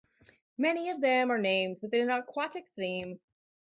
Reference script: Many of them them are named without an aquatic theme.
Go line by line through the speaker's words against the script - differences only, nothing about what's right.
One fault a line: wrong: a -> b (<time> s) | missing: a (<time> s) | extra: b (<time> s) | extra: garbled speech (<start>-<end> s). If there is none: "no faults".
missing: them (1.3 s)
wrong: without -> with (1.8 s)